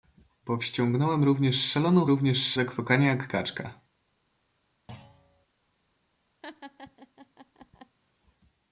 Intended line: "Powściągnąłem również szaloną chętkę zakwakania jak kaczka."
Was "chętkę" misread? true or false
true